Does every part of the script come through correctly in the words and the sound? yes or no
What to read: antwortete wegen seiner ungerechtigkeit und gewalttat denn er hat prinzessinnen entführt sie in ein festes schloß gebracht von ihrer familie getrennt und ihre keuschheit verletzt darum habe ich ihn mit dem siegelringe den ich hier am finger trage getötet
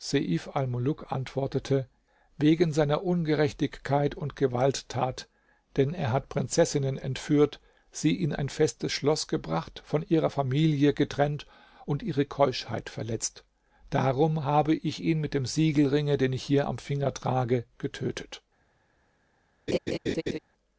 no